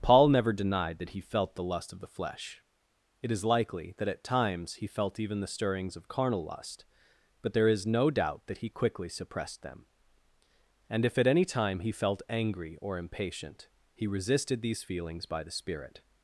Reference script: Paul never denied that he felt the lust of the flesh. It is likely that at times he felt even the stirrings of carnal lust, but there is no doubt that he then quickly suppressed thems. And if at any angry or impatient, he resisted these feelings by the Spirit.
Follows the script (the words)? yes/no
no